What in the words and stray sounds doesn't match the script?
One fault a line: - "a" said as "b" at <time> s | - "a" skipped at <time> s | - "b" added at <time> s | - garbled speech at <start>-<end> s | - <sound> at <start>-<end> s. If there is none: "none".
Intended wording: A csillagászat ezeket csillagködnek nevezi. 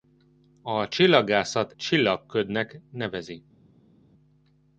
- "ezeket" skipped at 1.7 s